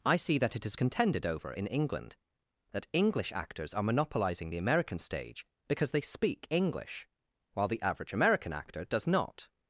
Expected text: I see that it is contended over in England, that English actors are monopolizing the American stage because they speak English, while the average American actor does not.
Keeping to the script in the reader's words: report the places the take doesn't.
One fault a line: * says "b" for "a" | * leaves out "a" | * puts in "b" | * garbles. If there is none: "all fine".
all fine